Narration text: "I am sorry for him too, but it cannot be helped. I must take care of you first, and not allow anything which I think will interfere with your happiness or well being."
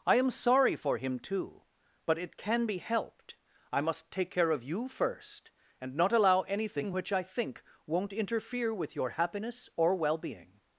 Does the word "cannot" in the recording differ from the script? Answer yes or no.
yes